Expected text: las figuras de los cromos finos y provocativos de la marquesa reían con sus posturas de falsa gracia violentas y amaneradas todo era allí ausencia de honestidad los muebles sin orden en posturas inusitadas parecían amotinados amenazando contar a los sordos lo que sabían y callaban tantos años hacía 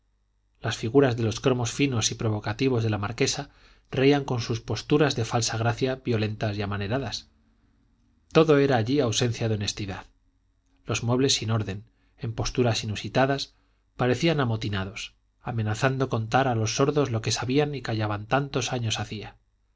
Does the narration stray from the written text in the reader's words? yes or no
no